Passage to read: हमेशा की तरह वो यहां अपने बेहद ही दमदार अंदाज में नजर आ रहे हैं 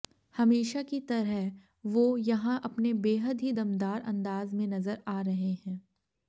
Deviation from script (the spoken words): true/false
false